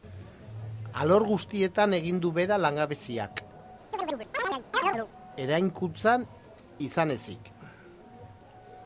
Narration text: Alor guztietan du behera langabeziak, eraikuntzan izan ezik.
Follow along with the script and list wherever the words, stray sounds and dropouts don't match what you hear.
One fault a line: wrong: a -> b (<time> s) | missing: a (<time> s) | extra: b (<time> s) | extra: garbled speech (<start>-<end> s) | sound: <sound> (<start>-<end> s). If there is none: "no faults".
extra: egin (2.0 s)
sound: chirp (3.9-5.1 s)